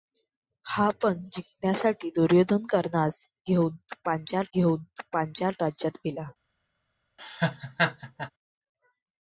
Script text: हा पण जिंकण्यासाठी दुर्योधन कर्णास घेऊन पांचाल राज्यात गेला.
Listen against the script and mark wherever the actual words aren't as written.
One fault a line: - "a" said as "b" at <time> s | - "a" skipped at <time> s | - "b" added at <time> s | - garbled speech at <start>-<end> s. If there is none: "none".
- "घेऊन पांचाल" added at 4.5 s